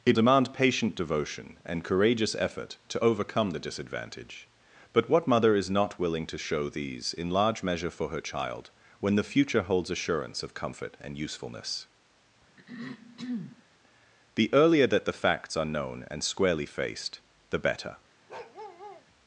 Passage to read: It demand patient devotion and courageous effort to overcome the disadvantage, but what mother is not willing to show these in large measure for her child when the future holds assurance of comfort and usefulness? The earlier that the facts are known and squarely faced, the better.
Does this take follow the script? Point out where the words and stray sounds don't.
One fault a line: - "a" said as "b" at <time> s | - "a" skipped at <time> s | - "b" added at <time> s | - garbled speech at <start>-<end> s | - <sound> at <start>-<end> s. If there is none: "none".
- throat clearing at 12.6-13.6 s
- bark at 18.3-19.1 s